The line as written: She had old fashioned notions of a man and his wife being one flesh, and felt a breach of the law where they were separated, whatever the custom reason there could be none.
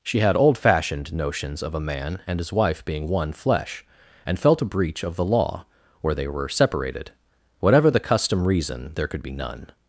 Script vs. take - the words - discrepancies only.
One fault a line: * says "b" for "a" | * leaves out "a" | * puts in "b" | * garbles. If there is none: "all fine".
all fine